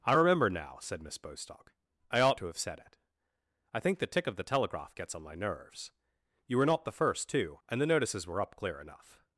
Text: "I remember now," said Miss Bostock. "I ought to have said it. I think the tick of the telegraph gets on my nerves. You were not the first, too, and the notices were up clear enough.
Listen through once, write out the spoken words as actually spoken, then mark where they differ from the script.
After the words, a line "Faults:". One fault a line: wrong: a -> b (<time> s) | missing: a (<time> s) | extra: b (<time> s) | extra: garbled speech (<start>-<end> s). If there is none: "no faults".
"I remember now," said Miss Bostock. "I ought to have said it. I think the tick of the telegraph gets on my nerves. You were not the first, too, and the notices were up clear enough.
Faults:
no faults